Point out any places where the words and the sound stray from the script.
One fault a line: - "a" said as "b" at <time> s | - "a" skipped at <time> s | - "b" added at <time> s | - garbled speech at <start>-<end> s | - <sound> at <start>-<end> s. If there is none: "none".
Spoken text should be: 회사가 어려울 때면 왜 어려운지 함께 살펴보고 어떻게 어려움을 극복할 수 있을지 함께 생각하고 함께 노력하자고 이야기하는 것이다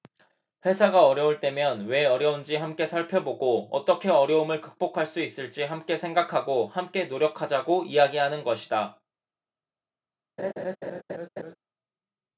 - laugh at 10.4-11.6 s